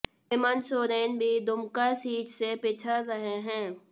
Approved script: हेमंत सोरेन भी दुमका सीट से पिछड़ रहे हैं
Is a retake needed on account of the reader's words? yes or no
no